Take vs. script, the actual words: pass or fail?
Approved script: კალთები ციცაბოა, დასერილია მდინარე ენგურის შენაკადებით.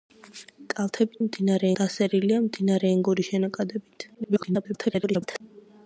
fail